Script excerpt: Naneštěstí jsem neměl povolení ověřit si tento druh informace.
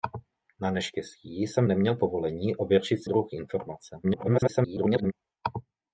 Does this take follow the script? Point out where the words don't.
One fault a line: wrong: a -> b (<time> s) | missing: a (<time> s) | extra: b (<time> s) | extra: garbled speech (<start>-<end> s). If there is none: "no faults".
missing: si tento (3.0 s)
extra: garbled speech (4.0-5.1 s)